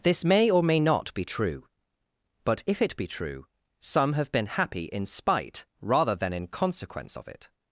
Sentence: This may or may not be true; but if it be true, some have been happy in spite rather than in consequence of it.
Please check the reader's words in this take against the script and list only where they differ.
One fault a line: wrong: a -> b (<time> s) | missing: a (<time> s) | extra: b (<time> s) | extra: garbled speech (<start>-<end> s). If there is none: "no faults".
no faults